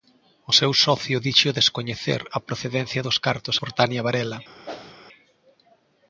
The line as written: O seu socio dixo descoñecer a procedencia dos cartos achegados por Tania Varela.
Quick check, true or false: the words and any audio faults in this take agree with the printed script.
false